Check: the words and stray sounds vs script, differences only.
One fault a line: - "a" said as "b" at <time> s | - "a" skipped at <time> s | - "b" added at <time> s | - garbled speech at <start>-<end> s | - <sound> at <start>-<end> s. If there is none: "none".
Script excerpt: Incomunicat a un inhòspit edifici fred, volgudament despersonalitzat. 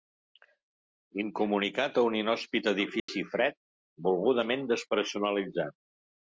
- dropout at 3.0-3.1 s